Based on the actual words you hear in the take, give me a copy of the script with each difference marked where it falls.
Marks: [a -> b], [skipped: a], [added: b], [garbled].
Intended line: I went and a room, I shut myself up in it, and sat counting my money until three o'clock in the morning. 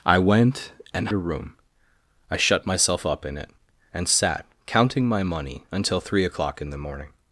I went and a room, I shut myself up in it, and sat counting my money until three o'clock in the morning.